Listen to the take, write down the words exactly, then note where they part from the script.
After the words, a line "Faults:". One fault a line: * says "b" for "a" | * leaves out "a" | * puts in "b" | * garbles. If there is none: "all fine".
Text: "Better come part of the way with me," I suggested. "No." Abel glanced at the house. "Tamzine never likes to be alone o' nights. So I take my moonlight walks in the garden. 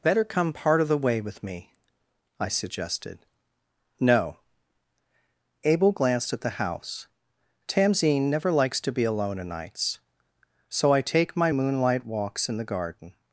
"Better come part of the way with me," I suggested. "No." Abel glanced at the house. "Tamzine never likes to be alone o' nights. So I take my moonlight walks in the garden.
Faults:
all fine